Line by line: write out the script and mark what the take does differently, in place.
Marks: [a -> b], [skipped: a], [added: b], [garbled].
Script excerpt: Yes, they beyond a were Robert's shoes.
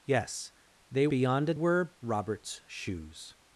Yes, they beyond a were Robert's shoes.